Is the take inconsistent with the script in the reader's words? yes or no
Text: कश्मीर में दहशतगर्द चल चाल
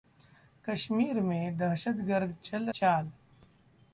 no